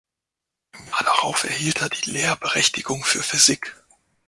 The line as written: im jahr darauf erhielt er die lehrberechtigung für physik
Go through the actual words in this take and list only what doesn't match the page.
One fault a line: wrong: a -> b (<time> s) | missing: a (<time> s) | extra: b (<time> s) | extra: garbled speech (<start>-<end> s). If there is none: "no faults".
no faults